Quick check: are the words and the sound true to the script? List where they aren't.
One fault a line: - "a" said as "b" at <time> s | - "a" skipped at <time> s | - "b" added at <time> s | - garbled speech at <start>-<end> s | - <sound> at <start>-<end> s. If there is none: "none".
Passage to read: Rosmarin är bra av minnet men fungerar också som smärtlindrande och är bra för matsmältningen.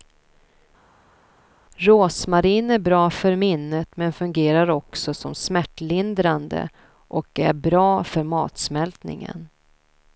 - "av" said as "för" at 3.1 s